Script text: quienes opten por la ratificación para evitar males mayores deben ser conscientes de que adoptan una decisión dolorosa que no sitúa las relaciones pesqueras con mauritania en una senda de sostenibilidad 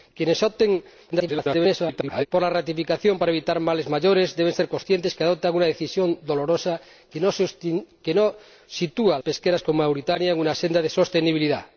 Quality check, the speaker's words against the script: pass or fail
fail